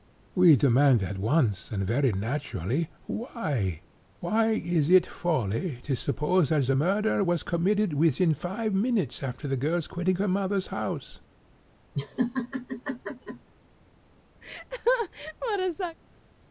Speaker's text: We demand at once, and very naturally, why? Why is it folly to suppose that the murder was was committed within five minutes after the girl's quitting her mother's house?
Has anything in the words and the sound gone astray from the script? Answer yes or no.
yes